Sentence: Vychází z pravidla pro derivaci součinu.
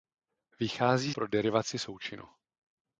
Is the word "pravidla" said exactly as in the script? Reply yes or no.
no